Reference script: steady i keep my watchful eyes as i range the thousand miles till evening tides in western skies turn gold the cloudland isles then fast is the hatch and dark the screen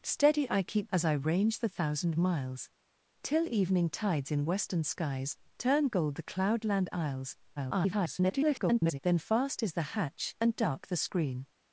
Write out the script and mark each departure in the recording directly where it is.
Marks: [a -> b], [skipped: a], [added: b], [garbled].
steady i keep [skipped: my watchful eyes] as i range the thousand miles till evening tides in western skies turn gold the cloudland isles [garbled] then fast is the hatch and dark the screen